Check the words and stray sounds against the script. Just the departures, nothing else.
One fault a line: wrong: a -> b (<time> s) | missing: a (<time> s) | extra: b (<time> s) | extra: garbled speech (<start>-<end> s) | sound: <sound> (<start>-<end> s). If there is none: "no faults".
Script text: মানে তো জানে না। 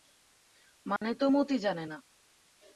sound: dropout (1.0-1.0 s)
extra: মতি (1.3 s)